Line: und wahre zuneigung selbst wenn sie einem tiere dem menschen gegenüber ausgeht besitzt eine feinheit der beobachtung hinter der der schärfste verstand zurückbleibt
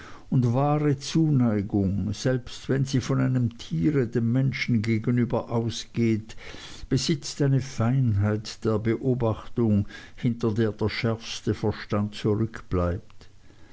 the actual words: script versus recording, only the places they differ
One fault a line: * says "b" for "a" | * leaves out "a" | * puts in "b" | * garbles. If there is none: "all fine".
* puts in "von"